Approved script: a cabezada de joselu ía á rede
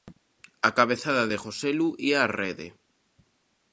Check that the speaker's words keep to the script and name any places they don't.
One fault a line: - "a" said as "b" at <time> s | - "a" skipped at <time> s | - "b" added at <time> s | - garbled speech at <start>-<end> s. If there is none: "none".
none